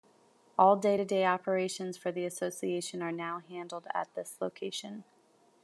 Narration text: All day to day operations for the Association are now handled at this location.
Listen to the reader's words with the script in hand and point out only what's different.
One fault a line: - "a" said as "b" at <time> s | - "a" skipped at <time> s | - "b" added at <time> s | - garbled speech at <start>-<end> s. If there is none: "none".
none